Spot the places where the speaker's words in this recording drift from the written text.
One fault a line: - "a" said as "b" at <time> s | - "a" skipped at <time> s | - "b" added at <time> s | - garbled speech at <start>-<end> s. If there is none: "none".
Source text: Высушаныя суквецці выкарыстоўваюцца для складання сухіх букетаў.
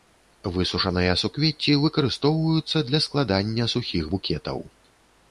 none